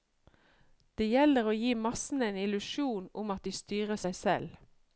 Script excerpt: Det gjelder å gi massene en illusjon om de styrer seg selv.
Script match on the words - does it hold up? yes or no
no